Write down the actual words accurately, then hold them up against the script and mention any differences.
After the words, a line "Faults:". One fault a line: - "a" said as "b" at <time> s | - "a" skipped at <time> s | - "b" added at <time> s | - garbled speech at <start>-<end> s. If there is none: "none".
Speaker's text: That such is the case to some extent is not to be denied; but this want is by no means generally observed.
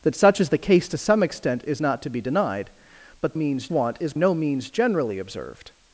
That such is the case to some extent is not to be denied; but means want is no means generally observed.
Faults:
- "this" said as "means" at 3.3 s
- "by" skipped at 4.1 s